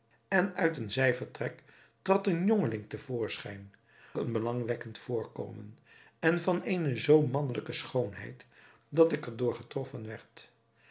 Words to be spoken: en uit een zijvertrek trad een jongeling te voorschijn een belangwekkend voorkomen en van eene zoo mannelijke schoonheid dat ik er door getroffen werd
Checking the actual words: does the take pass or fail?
pass